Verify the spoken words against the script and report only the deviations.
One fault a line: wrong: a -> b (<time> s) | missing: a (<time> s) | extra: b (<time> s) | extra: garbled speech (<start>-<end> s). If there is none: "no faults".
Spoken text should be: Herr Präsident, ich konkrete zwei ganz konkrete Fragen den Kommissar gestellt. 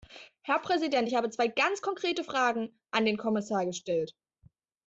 wrong: konkrete -> habe (1.2 s)
extra: an (2.9 s)